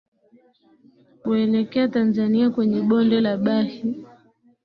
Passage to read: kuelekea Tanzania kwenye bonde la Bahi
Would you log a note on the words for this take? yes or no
no